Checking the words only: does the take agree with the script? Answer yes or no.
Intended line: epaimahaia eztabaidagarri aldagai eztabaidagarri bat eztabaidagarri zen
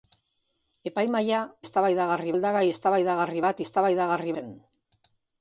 yes